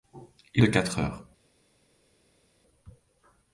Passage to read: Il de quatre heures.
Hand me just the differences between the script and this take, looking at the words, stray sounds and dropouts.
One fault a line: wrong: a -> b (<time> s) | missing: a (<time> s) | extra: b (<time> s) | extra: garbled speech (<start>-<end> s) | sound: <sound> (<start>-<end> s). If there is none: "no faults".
no faults